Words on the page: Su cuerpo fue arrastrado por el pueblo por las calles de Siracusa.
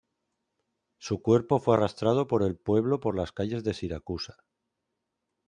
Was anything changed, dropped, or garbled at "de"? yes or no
no